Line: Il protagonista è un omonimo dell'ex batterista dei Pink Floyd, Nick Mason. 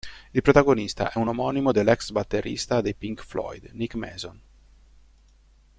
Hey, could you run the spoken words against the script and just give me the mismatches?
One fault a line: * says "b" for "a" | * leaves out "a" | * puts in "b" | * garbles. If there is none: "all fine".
all fine